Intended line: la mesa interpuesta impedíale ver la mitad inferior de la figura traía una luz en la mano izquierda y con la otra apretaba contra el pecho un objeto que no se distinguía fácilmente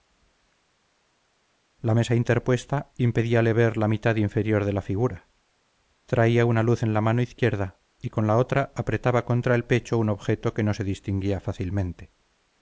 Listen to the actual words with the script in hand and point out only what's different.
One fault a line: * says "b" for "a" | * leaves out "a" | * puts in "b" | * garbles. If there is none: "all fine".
all fine